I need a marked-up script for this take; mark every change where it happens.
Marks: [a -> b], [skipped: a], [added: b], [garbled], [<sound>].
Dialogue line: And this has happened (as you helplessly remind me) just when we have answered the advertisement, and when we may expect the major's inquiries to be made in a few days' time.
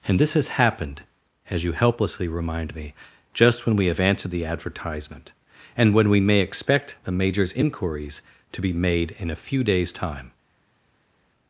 And this has happened (as you helplessly remind me) just when we have answered the advertisement, and when we may expect the major's inquiries to be made in a few days' time.